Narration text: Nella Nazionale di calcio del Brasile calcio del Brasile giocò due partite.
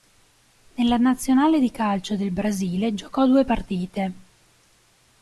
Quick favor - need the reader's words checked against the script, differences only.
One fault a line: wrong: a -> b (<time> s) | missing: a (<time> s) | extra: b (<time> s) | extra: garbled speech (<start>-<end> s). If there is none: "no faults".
missing: calcio del Brasile (3.0 s)